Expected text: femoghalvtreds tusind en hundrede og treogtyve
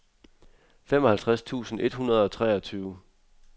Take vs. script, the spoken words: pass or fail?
fail